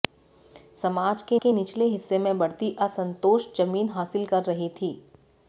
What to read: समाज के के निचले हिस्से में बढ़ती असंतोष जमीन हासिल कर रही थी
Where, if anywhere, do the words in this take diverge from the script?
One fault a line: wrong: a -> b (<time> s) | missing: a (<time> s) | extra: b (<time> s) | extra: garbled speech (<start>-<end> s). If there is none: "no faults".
no faults